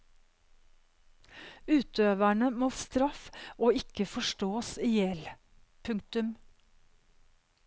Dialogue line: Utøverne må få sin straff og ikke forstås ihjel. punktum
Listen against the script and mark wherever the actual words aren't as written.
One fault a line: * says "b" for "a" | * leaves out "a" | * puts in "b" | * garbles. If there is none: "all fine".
* leaves out "få sin"